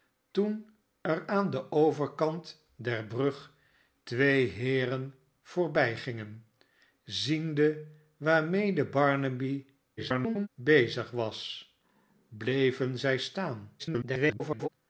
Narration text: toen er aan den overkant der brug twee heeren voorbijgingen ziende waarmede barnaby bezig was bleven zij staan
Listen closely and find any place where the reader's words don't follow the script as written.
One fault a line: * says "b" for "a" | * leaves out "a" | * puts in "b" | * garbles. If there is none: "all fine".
* garbles
* garbles